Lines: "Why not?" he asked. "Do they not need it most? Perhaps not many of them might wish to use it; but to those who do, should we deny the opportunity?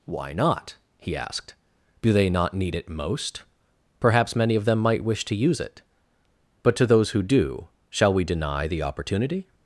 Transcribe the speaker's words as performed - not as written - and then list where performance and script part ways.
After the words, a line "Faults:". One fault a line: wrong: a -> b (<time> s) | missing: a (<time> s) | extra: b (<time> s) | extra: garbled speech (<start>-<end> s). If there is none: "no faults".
"Why not?" he asked. "Do they not need it most? Perhaps many of them might wish to use it; but to those who do, shall we deny the opportunity?
Faults:
missing: not (4.3 s)
wrong: should -> shall (7.9 s)